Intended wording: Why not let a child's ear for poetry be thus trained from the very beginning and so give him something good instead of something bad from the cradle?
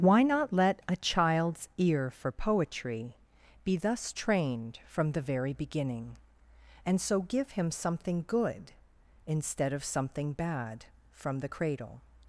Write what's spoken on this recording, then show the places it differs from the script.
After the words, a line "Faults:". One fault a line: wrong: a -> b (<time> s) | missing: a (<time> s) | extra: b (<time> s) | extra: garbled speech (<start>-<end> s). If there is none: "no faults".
Why not let a child's ear for poetry be thus trained from the very beginning and so give him something good instead of something bad from the cradle?
Faults:
no faults